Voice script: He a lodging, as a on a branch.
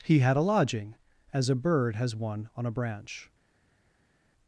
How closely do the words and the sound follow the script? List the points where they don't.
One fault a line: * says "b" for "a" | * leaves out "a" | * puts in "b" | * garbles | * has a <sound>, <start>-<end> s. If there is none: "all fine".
* puts in "had"
* puts in "bird has one"